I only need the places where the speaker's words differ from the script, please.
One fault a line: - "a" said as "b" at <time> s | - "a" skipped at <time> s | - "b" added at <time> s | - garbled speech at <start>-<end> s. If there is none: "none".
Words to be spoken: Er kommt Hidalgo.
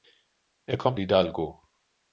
none